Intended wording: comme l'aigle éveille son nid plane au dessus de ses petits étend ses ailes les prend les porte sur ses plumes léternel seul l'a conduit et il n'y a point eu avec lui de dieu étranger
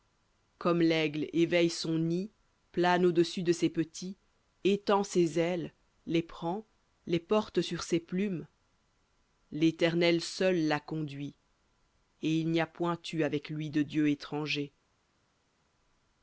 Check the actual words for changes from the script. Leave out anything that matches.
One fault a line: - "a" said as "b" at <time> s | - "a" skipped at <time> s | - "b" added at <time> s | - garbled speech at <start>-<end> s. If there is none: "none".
none